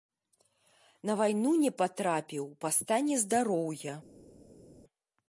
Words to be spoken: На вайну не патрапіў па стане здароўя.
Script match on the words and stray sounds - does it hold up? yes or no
yes